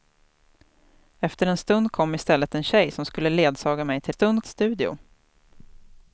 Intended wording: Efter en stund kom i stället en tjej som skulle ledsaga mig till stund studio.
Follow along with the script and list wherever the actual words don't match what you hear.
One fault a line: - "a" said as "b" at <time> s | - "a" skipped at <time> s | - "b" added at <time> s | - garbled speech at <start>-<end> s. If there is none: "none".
none